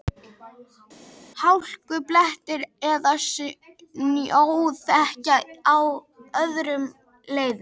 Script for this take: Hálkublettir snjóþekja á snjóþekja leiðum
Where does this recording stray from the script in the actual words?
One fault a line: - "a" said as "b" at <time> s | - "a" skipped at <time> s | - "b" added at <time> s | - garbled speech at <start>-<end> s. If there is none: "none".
- "eða" added at 2.9 s
- "snjóþekja" said as "öðrum" at 6.4 s